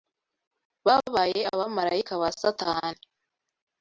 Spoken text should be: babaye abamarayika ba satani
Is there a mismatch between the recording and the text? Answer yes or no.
no